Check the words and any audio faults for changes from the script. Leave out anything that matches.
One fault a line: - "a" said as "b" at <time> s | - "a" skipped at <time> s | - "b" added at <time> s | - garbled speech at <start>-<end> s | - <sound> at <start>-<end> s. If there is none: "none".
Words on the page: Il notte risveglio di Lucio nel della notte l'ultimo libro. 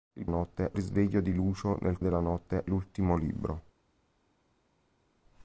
none